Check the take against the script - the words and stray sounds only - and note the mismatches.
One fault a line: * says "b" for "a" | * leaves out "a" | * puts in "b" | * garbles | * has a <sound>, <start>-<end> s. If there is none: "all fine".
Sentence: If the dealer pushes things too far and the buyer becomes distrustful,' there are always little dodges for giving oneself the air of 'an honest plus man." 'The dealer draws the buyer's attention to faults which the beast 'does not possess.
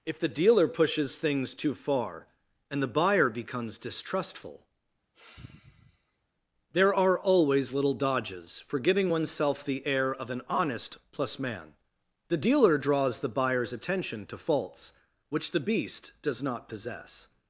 * has a sigh, 5.1-6.3 s